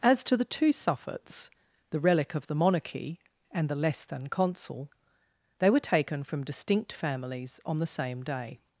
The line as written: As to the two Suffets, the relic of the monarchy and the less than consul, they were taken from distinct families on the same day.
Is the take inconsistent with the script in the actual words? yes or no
no